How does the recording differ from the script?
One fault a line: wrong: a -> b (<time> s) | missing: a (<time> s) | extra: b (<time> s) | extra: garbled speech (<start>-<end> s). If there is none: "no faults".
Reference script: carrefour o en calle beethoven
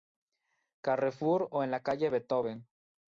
extra: la (1.7 s)